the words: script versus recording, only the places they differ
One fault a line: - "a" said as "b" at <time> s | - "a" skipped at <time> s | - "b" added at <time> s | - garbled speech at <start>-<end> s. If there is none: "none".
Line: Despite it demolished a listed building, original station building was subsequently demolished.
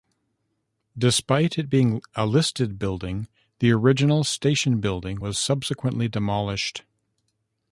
- "demolished" said as "being" at 1.7 s
- "the" added at 3.6 s